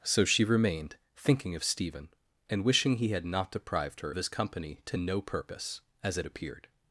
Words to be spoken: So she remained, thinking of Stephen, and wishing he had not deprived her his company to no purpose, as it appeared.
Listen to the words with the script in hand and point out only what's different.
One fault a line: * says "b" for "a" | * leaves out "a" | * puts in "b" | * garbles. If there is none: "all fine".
all fine